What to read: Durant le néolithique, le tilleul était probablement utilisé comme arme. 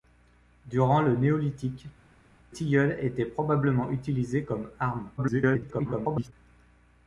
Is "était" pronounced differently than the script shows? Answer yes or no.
no